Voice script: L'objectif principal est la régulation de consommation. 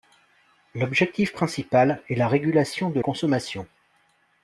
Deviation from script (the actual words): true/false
false